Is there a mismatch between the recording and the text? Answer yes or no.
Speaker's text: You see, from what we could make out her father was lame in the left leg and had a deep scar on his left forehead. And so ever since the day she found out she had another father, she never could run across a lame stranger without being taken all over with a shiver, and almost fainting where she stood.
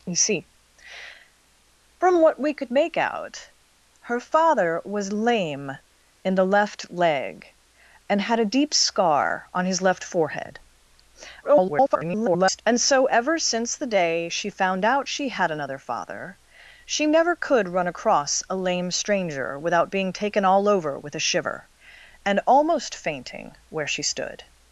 yes